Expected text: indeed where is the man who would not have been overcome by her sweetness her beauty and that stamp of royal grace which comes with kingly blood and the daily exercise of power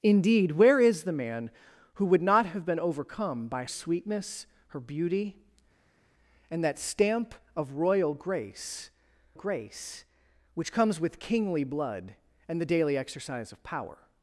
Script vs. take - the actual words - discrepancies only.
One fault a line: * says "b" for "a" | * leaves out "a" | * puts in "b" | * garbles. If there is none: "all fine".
* leaves out "her"
* puts in "grace"